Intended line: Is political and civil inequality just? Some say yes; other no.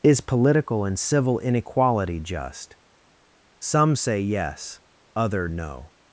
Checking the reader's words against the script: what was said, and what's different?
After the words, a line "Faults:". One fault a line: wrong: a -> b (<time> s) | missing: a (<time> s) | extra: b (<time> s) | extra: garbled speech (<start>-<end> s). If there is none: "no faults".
Is political and civil inequality just? Some say yes; other no.
Faults:
no faults